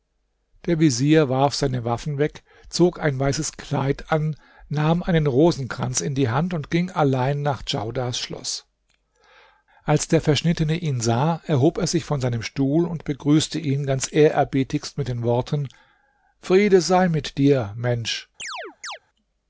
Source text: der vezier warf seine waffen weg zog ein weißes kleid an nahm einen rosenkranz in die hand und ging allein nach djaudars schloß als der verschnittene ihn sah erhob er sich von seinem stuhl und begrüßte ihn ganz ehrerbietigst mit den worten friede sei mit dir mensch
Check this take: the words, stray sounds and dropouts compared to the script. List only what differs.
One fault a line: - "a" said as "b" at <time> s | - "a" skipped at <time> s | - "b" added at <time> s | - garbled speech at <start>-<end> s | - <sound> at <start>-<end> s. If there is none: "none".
- chirp at 18.4-19.0 s